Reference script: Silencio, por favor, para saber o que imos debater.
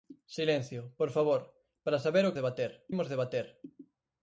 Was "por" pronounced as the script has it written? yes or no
yes